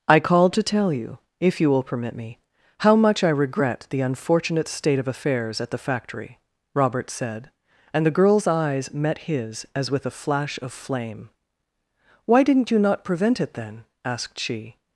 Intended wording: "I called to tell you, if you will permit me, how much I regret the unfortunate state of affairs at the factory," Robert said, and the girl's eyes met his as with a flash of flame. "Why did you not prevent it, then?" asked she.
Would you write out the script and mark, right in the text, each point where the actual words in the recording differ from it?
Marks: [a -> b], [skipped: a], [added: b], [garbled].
"I called to tell you, if you will permit me, how much I regret the unfortunate state of affairs at the factory," Robert said, and the girl's eyes met his as with a flash of flame. "Why [did -> didn't] you not prevent it, then?" asked she.